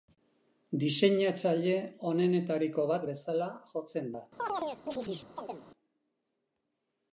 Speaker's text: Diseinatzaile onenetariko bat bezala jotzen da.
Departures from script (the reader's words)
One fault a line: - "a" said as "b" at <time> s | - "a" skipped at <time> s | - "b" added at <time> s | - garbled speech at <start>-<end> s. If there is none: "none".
none